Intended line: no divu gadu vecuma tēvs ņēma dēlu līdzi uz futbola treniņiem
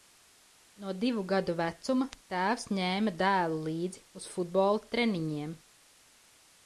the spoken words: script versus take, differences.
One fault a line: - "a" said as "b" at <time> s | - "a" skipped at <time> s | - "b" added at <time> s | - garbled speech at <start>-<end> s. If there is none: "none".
none